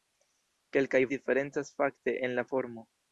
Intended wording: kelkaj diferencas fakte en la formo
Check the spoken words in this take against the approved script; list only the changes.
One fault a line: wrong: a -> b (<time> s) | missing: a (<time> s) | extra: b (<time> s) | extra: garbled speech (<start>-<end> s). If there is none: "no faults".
no faults